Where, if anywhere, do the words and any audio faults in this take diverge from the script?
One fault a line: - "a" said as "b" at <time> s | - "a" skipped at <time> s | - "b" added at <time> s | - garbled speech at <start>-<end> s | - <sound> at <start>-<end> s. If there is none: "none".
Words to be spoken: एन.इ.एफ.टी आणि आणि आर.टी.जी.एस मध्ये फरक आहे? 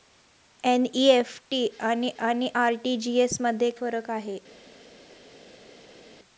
none